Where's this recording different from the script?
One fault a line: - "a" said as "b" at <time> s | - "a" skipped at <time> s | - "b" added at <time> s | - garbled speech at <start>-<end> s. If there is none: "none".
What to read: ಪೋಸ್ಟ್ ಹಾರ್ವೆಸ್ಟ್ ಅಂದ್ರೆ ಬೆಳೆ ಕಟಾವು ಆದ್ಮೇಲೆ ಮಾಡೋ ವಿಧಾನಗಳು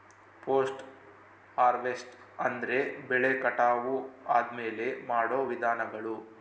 none